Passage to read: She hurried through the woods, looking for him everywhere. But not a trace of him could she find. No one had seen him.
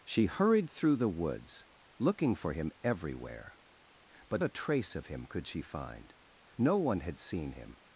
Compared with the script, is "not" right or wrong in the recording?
wrong